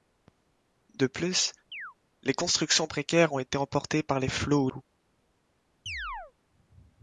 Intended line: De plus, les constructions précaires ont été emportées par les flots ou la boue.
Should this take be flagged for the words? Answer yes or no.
yes